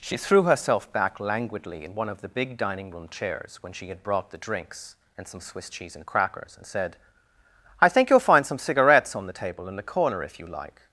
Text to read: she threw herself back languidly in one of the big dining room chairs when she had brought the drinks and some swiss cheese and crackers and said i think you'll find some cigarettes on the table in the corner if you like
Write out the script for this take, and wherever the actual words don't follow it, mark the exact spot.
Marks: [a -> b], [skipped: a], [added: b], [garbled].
she threw herself back languidly in one of the big dining room chairs when she had brought the drinks and some swiss cheese and crackers and said i think you'll find some cigarettes on the table in the corner if you like